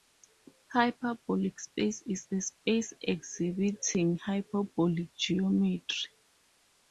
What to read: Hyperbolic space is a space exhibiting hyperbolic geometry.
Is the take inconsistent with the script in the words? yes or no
no